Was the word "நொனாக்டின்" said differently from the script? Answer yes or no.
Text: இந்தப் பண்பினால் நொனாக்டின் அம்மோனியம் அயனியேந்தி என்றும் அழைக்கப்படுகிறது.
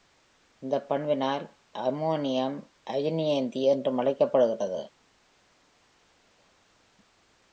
yes